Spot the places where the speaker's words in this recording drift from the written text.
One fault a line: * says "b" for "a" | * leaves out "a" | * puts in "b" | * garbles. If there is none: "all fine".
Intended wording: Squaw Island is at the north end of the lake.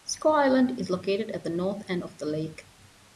* puts in "located"